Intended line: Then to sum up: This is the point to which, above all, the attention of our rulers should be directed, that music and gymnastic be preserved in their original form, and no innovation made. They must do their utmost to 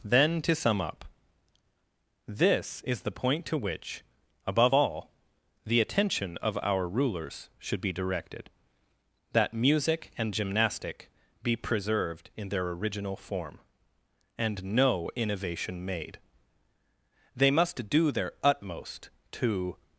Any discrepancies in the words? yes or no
no